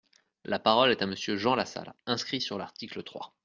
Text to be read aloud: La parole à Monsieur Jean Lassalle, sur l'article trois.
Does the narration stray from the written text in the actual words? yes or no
yes